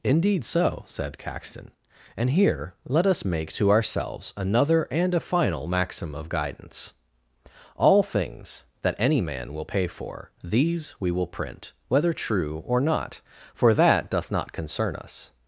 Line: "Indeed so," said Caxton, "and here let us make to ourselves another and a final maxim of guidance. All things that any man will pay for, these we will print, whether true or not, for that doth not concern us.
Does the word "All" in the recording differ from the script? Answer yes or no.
no